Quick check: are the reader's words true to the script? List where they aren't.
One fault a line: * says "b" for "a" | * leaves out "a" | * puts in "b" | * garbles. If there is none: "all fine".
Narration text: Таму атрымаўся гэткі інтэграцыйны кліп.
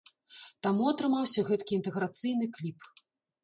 all fine